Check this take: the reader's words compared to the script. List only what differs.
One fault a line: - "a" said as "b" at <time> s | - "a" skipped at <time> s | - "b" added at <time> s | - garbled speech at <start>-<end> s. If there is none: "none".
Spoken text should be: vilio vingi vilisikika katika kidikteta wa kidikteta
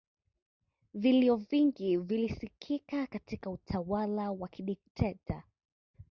- "kidikteta" said as "utawala" at 3.5 s